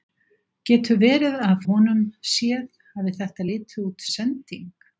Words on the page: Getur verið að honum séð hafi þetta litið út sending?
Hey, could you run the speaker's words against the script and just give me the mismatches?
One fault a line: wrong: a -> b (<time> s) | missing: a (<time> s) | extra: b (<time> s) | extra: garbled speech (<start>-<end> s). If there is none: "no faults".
no faults